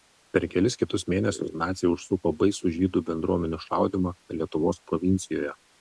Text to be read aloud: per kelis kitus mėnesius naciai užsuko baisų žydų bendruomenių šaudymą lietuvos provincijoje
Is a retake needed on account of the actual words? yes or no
no